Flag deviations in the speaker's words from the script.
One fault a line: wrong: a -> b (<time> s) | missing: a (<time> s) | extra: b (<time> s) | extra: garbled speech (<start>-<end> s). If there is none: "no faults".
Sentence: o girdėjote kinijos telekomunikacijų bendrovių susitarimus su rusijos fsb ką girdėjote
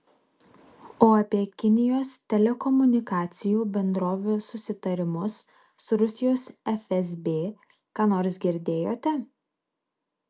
wrong: girdėjote -> apie (1.2 s)
extra: nors (8.2 s)